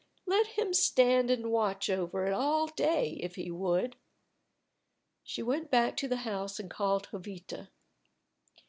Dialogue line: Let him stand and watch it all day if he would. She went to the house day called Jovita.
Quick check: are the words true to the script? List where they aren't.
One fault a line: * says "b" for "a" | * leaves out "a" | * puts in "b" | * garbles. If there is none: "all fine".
* puts in "over"
* puts in "back"
* says "and" for "day"